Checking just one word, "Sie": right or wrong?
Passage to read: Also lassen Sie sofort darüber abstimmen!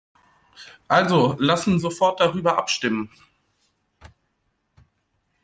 wrong